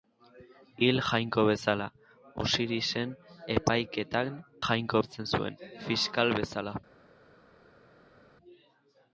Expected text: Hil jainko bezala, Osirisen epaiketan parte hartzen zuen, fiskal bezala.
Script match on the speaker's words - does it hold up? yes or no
no